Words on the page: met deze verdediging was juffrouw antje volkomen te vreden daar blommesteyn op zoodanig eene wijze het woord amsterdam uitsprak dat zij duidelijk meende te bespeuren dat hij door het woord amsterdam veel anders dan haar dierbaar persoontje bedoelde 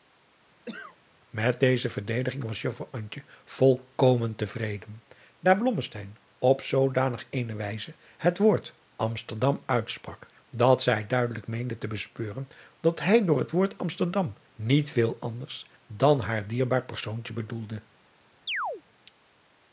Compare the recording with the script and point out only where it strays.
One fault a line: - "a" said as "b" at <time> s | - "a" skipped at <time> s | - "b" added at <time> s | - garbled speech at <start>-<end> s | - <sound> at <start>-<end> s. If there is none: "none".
- cough at 0.7-1.0 s
- "niet" added at 14.5 s
- chirp at 18.5-18.8 s